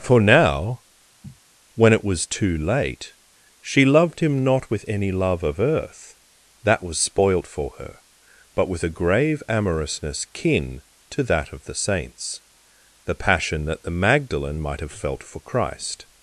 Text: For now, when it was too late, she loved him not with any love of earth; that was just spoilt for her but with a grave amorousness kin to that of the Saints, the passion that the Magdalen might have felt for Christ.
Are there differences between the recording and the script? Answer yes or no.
yes